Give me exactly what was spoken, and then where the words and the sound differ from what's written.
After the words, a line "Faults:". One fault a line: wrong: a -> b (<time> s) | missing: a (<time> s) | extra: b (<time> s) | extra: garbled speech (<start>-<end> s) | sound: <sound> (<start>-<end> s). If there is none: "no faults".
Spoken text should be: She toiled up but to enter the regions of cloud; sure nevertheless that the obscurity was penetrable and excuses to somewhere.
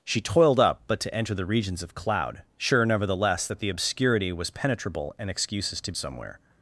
She toiled up but to enter the regions of cloud; sure nevertheless that the obscurity was penetrable and excuses to somewhere.
Faults:
no faults